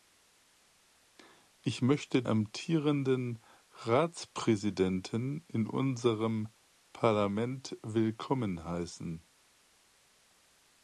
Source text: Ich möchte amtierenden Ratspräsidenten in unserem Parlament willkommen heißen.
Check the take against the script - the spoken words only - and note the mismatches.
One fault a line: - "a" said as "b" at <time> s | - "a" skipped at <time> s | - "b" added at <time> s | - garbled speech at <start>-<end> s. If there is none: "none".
none